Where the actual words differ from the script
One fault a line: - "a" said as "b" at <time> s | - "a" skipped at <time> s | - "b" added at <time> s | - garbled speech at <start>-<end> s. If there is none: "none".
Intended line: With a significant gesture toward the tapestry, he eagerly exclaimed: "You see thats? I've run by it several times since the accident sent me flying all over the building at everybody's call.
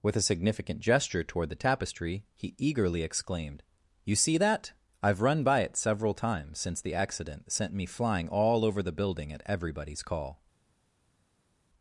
- "thats" said as "that" at 4.4 s